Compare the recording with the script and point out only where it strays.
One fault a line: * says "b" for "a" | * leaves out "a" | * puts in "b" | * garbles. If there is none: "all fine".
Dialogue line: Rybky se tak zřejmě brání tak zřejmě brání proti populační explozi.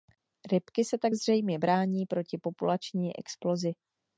* leaves out "tak zřejmě brání"